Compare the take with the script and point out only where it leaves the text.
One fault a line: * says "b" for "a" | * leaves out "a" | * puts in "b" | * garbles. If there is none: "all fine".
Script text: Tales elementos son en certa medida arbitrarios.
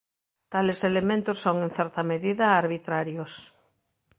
all fine